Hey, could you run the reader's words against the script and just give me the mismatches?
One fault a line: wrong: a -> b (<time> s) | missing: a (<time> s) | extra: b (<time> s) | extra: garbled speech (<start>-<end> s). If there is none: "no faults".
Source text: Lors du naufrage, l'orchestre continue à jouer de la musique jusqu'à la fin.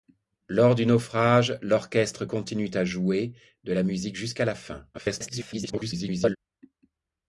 extra: garbled speech (4.9-6.4 s)